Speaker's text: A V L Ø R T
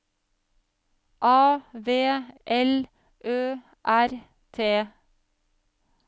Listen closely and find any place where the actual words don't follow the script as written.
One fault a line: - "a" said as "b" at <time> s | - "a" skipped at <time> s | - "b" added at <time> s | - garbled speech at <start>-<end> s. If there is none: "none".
none